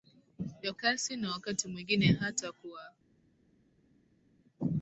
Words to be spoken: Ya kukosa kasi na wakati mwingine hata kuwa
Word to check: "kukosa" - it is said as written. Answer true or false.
false